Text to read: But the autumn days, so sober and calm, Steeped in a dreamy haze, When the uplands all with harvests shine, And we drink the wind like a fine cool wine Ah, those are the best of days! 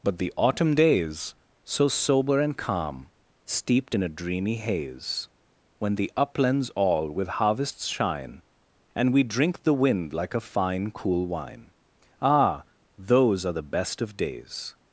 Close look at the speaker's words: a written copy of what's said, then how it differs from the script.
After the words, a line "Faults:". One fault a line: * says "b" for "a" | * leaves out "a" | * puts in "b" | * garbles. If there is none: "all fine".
But the autumn days, so sober and calm, Steeped in a dreamy haze, When the uplands all with harvests shine, And we drink the wind like a fine cool wine Ah, those are the best of days!
Faults:
all fine